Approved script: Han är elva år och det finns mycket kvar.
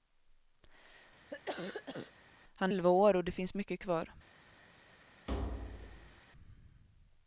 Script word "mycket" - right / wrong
right